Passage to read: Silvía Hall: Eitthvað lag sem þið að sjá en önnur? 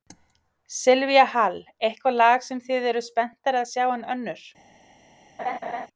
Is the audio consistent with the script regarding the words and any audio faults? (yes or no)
no